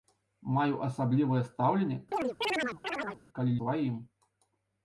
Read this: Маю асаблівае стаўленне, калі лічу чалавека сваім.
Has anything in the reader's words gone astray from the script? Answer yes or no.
yes